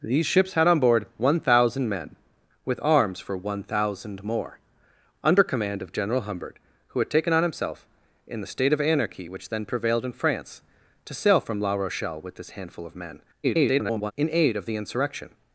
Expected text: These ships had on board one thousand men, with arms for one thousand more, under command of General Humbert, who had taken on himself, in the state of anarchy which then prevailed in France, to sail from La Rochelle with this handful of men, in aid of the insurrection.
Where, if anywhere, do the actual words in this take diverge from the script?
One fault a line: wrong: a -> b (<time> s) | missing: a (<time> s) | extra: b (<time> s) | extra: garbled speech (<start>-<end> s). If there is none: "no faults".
extra: garbled speech (13.4-14.1 s)